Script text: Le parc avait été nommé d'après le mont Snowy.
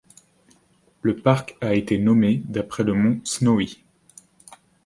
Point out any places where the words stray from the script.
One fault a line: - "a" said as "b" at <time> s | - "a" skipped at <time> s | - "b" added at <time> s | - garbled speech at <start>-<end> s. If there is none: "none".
- "avait" said as "a" at 1.6 s